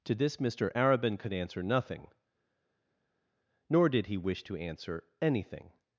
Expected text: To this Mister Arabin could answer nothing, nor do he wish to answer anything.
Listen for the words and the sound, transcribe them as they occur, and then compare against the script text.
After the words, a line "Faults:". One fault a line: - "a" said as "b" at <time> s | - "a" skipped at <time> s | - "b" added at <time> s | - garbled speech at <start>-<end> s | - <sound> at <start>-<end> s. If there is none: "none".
To this Mister Arabin could answer nothing, nor did he wish to answer anything.
Faults:
- "do" said as "did" at 3.9 s